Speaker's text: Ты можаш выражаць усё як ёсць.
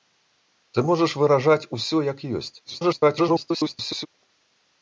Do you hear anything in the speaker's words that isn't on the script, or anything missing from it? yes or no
yes